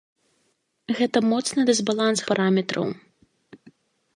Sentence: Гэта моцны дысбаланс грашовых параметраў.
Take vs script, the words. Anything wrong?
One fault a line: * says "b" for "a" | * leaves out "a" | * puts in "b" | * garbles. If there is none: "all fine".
* leaves out "грашовых"